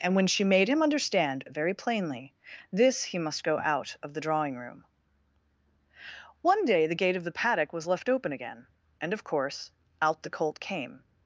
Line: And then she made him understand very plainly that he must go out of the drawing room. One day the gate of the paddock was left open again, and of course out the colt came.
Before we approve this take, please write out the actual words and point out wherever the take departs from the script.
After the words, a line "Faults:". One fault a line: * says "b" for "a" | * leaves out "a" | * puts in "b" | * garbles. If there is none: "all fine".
And when she made him understand very plainly this he must go out of the drawing room. One day the gate of the paddock was left open again, and of course out the colt came.
Faults:
* says "when" for "then"
* says "this" for "that"